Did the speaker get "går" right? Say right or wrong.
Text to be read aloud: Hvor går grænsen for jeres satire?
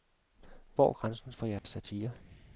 wrong